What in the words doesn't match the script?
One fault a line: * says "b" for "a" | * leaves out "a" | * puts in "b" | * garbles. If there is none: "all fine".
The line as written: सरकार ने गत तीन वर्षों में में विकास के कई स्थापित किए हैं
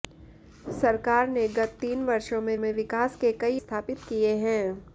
all fine